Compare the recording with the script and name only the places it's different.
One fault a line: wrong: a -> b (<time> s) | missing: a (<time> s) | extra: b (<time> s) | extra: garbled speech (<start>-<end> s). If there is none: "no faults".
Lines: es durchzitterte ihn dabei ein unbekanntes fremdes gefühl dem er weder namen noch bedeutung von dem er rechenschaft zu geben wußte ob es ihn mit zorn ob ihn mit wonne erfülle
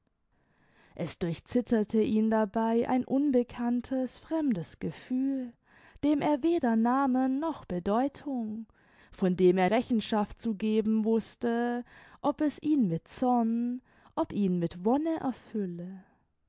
no faults